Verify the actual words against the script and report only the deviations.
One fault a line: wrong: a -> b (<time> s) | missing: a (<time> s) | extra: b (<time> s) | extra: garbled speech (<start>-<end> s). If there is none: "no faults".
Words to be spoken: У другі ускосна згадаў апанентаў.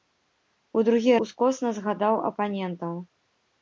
no faults